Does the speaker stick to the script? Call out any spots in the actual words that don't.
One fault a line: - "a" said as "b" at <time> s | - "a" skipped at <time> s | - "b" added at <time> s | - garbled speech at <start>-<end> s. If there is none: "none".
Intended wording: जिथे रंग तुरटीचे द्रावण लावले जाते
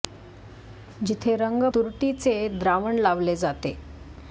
none